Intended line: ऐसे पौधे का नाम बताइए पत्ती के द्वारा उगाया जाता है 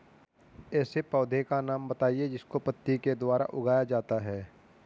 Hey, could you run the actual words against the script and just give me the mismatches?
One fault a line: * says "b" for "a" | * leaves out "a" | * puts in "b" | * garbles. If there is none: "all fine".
* puts in "जिसको"